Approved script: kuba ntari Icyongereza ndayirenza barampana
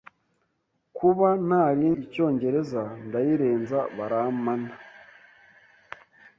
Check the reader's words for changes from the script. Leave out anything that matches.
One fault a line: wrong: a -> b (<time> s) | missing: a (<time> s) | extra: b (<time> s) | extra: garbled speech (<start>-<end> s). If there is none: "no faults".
no faults